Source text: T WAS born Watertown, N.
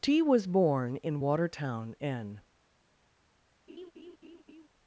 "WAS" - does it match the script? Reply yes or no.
yes